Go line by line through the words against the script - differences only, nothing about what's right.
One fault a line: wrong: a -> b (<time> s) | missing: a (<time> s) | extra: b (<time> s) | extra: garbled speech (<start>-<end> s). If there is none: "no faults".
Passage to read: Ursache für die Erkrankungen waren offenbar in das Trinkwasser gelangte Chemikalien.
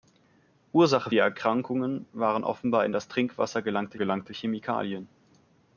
missing: für (1.1 s)
extra: gelangte (4.0 s)